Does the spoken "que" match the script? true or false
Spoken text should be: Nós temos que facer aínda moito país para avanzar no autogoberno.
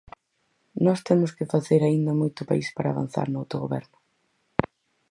true